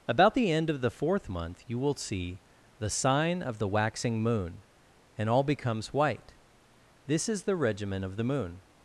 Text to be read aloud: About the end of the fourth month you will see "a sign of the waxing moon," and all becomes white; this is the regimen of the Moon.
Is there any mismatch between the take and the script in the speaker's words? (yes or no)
yes